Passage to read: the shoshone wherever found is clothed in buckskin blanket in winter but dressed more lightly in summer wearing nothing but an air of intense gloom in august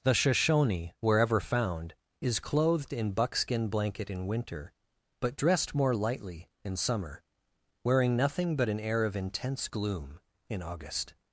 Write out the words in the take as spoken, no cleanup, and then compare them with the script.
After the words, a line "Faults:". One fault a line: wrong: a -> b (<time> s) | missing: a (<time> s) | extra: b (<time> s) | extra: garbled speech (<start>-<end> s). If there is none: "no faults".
the shoshone wherever found is clothed in buckskin blanket in winter but dressed more lightly in summer wearing nothing but an air of intense gloom in august
Faults:
no faults